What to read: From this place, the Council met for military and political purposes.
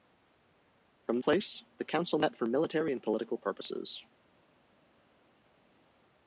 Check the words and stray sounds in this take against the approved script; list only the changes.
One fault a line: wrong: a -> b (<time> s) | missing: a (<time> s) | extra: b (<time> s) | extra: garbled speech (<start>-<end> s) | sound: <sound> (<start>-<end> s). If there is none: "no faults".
missing: this (1.2 s)